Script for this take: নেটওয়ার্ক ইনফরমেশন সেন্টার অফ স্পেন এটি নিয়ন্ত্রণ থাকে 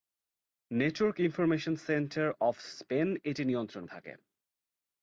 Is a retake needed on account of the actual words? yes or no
no